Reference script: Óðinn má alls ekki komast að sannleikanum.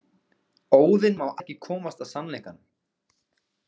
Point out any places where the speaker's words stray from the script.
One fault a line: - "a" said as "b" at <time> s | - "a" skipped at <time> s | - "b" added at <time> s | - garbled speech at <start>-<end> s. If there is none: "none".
- "alls" skipped at 1.3 s